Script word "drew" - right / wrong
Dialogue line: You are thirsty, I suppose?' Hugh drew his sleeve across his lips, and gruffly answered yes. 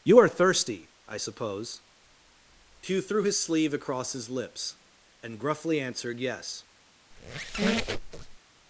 wrong